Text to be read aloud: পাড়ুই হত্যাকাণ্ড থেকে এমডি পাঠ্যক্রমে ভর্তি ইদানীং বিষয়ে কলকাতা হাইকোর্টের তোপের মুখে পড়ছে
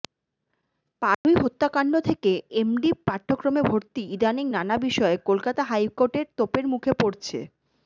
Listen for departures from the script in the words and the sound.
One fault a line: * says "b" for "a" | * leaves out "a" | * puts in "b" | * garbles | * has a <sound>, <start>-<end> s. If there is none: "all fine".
* has a dropout, 1.1-1.2 s
* puts in "নানা"